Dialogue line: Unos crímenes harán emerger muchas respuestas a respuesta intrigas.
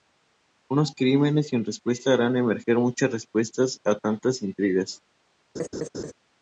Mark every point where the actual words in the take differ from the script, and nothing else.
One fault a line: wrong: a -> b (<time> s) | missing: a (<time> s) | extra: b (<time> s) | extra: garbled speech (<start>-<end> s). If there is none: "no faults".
extra: sin respuesta (1.5 s)
wrong: respuesta -> tantas (3.9 s)